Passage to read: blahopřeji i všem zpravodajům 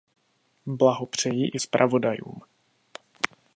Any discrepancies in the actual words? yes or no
yes